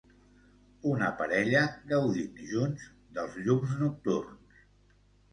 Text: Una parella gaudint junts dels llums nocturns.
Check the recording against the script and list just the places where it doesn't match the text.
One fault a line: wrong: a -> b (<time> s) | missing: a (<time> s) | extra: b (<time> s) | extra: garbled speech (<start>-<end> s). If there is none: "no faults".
no faults